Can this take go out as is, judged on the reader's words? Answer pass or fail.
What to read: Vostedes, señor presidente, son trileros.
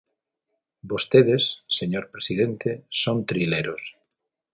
pass